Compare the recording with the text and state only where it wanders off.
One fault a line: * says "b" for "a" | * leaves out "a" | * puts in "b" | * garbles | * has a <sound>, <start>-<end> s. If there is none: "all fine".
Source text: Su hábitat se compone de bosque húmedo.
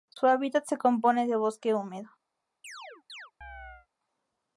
* has a chirp, 2.6-3.9 s